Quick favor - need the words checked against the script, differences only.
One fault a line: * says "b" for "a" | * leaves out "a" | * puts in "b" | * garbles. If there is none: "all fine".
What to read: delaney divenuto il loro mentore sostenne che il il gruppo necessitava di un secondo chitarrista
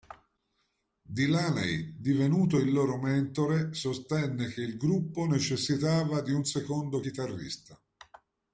* leaves out "il"